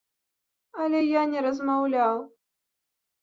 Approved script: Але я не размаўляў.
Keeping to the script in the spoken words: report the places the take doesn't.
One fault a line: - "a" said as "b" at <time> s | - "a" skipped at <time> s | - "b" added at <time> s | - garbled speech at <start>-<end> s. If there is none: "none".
none